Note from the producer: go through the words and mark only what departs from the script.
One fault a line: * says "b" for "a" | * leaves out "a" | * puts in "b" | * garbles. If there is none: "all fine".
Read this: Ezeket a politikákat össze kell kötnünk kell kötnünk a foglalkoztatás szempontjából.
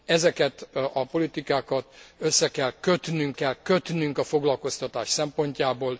all fine